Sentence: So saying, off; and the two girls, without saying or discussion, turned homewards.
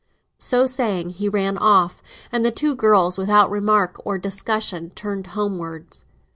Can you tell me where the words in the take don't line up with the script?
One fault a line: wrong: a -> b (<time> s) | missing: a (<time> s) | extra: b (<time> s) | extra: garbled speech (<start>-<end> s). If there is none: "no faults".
extra: he ran (1.1 s)
wrong: saying -> remark (3.5 s)